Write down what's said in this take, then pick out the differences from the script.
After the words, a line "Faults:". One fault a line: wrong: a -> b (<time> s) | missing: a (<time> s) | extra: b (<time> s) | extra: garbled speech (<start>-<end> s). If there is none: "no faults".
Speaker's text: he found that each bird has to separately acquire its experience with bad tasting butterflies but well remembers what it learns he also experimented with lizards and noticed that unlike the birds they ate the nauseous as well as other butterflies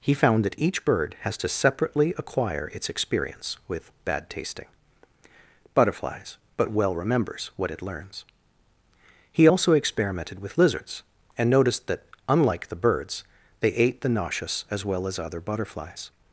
he found that each bird has to separately acquire its experience with bad tasting butterflies but well remembers what it learns he also experimented with lizards and noticed that unlike the birds they ate the nauseous as well as other butterflies
Faults:
no faults